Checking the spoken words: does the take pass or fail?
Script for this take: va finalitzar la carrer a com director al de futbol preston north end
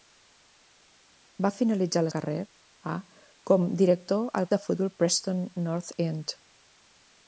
pass